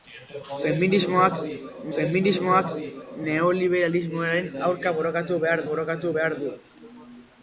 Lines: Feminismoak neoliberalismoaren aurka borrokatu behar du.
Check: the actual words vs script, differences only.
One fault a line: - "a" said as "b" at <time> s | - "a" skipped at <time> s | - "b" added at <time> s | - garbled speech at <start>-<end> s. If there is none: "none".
- "feminismoak" added at 1.9 s
- "borrokatu behar" added at 5.7 s